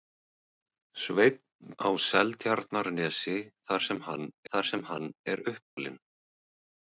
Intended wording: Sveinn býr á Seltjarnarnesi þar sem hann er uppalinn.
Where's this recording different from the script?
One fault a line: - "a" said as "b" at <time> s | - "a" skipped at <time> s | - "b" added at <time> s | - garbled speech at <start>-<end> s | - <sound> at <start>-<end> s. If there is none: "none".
- "býr" skipped at 1.8 s
- "þar sem hann" added at 4.5 s
- dropout at 5.6-5.8 s